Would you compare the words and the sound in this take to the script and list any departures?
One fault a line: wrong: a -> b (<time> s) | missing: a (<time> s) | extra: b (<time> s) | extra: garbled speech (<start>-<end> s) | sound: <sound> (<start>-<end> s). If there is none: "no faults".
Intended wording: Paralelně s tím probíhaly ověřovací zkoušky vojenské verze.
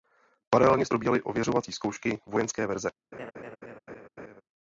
missing: tím (0.9 s)
sound: laugh (3.1-4.4 s)